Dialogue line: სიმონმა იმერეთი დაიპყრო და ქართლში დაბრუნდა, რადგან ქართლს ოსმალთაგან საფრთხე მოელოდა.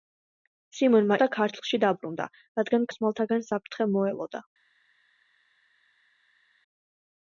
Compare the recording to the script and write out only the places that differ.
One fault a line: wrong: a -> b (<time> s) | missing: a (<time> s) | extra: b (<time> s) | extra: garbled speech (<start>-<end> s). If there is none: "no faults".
missing: იმერეთი დაიპყრო (1.2 s)
missing: ქართლს (2.9 s)